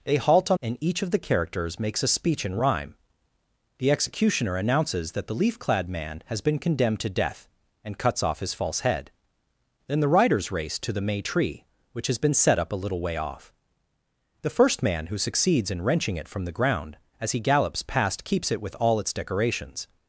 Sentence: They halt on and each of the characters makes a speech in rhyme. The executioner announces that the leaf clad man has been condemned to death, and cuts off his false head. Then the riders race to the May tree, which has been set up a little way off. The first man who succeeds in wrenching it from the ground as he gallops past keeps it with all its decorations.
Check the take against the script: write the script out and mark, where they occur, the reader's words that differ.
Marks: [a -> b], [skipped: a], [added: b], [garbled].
They halt on and each of the characters makes a speech in rhyme. The executioner announces that the leaf clad man has been condemned to death, and cuts off his false head. Then the riders race to the May tree, which has been set up a little way off. The first man who succeeds in wrenching it from the ground as he gallops past keeps it with all its decorations.